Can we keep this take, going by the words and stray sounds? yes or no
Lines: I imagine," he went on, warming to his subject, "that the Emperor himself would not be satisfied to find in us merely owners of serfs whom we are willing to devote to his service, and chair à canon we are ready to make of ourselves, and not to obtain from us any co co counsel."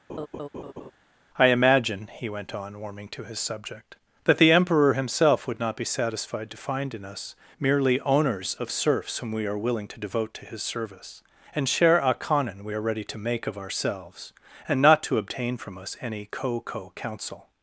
no